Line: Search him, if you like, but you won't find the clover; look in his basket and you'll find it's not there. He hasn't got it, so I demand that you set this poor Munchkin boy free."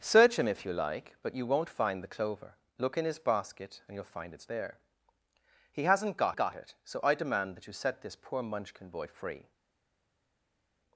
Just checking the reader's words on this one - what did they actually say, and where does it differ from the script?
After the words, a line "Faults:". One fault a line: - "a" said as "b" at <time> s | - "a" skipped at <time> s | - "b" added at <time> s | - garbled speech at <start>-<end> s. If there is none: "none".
Search him, if you like, but you won't find the clover; look in his basket and you'll find it's there. He hasn't got got it, so I demand that you set this poor Munchkin boy free."
Faults:
- "not" skipped at 4.5 s
- "got" added at 6.4 s